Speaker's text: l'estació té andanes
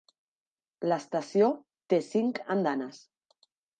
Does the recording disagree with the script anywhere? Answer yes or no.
yes